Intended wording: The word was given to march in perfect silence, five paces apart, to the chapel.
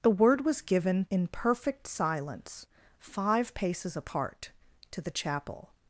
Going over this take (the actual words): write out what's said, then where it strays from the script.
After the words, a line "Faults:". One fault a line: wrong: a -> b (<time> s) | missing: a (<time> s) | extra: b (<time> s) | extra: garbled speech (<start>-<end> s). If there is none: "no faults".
The word was given in perfect silence, five paces apart, to the chapel.
Faults:
missing: to march (1.1 s)